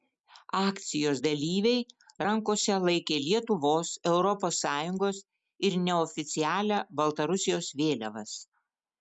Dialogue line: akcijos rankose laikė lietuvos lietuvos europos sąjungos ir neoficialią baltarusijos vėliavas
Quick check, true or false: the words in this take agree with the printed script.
false